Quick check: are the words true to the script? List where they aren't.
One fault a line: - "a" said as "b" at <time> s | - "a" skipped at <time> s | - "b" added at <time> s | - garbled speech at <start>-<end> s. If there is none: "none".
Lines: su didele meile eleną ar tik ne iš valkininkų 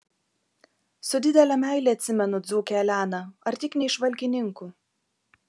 - "atsimenu dzūkę" added at 2.0 s